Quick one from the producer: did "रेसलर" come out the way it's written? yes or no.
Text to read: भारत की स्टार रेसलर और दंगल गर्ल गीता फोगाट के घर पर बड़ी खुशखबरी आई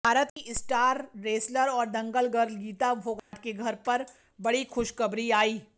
yes